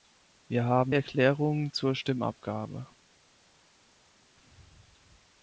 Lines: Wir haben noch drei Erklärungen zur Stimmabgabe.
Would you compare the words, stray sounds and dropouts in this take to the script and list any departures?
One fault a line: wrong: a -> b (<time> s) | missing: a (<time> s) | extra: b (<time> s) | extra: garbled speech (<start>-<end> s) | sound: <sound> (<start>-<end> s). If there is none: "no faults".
missing: noch drei (0.9 s)